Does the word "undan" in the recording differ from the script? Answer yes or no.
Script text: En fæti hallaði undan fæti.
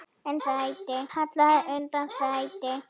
no